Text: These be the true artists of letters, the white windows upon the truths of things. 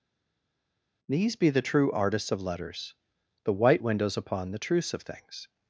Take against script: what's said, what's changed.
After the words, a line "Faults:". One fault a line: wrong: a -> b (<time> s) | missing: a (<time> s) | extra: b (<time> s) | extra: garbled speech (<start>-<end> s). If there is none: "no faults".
These be the true artists of letters, the white windows upon the truths of things.
Faults:
no faults